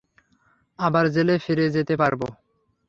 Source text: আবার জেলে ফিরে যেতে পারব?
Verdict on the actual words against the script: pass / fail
pass